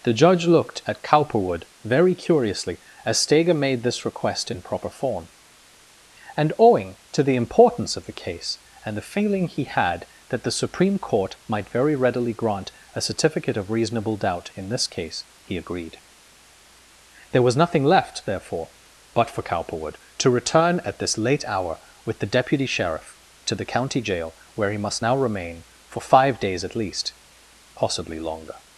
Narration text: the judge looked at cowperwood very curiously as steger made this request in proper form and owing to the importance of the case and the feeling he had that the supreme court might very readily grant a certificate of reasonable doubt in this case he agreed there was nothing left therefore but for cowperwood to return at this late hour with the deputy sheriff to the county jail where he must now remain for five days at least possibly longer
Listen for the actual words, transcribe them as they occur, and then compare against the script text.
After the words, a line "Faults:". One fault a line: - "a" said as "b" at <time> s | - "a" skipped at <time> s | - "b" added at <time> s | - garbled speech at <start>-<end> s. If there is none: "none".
the judge looked at cowperwood very curiously as steger made this request in proper form and owing to the importance of the case and the feeling he had that the supreme court might very readily grant a certificate of reasonable doubt in this case he agreed there was nothing left therefore but for cowperwood to return at this late hour with the deputy sheriff to the county jail where he must now remain for five days at least possibly longer
Faults:
none